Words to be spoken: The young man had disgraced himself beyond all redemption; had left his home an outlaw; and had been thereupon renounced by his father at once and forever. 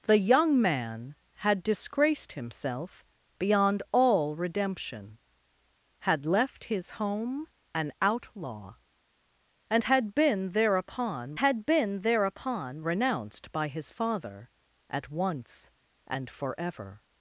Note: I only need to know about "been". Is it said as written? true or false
true